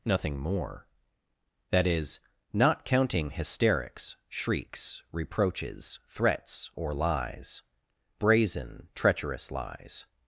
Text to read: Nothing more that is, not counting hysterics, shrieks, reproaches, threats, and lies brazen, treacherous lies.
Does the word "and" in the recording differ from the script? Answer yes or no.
yes